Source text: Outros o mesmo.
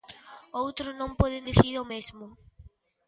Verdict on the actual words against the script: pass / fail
fail